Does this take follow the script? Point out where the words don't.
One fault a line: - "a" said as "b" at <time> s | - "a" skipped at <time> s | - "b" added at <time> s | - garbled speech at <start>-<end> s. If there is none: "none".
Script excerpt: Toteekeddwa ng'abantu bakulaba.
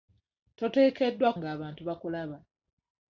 none